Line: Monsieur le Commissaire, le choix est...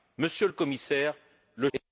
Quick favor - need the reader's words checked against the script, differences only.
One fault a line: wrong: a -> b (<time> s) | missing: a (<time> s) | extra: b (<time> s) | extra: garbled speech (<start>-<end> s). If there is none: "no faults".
missing: choix (1.7 s)